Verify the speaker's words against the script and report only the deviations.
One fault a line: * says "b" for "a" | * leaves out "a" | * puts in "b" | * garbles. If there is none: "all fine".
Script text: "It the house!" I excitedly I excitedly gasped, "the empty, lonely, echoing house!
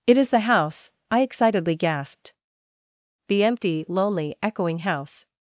* puts in "is"
* leaves out "I excitedly"